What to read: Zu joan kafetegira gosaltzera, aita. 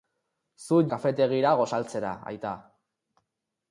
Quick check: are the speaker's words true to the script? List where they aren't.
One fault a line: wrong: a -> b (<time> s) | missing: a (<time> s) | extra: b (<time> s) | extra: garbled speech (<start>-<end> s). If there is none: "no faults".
missing: joan (0.8 s)